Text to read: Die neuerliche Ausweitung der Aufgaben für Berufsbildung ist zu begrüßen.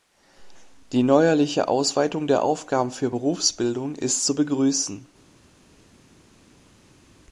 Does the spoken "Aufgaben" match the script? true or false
true